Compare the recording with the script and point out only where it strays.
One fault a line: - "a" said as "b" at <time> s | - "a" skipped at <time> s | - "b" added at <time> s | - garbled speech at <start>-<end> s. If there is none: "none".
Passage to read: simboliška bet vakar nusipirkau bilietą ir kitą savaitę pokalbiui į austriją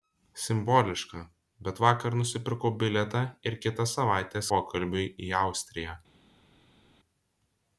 none